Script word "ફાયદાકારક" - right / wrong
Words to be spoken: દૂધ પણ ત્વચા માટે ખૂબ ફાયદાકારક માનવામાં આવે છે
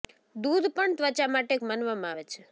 wrong